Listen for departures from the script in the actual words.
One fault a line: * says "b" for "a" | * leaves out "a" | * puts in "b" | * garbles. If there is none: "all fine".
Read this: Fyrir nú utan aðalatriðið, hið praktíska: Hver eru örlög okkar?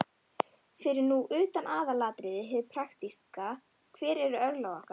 all fine